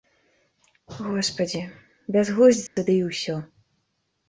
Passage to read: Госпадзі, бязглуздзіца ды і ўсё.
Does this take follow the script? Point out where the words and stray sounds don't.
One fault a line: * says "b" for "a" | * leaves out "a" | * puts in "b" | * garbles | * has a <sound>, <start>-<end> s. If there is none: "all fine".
* has a dropout, 2.7-2.8 s